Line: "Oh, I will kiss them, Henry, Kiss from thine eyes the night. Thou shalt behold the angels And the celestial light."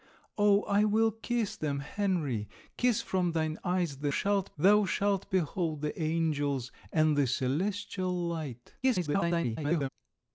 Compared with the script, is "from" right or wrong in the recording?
right